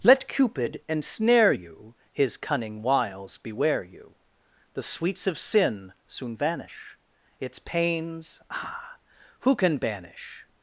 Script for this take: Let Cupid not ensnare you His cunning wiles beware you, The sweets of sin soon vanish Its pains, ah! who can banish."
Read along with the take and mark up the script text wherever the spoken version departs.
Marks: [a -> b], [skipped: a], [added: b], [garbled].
Let Cupid [skipped: not] ensnare you His cunning wiles beware you, The sweets of sin soon vanish Its pains, ah! who can banish."